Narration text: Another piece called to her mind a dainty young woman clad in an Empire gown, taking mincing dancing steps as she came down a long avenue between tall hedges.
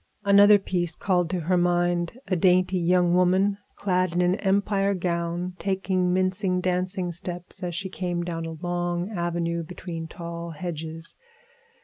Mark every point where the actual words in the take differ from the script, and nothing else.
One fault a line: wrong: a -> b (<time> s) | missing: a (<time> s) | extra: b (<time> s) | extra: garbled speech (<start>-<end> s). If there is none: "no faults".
no faults